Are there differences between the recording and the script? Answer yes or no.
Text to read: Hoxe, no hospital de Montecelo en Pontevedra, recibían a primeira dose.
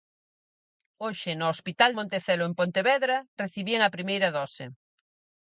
yes